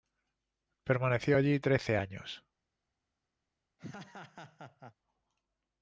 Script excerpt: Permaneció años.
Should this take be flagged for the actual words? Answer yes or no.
yes